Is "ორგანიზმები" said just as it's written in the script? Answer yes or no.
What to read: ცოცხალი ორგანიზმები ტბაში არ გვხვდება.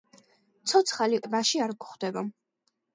no